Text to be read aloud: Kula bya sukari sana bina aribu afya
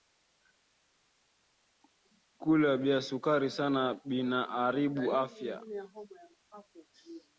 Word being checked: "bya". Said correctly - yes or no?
yes